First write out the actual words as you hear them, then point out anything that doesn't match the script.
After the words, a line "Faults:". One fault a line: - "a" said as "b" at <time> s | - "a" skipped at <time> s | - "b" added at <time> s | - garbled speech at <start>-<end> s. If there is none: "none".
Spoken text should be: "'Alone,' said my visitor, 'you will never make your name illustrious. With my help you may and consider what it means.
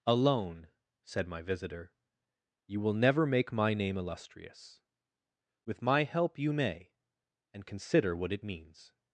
"'Alone,' said my visitor, 'you will never make my name illustrious. With my help you may and consider what it means.
Faults:
- "your" said as "my" at 3.5 s